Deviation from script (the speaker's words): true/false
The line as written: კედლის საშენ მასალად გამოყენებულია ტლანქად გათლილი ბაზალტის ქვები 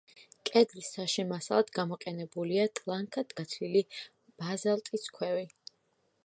false